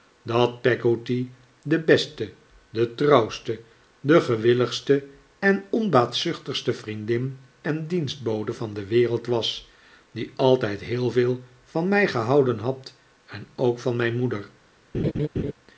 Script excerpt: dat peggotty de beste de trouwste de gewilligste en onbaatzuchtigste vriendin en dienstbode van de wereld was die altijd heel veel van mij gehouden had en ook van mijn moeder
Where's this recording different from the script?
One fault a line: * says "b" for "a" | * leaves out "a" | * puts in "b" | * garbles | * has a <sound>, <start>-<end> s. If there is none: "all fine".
* has a laugh, 14.9-15.5 s